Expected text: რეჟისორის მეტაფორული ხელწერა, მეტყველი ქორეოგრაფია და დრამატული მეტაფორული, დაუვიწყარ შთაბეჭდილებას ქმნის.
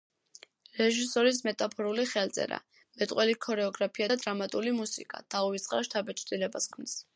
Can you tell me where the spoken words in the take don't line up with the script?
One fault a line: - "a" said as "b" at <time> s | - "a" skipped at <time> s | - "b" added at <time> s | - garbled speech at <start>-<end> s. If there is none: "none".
- "მეტაფორული" said as "მუსიკა" at 4.8 s